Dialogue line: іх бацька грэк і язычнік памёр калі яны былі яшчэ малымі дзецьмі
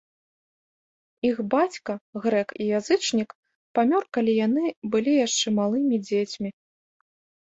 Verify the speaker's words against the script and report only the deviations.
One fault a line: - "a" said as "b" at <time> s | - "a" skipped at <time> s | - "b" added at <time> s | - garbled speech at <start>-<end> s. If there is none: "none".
none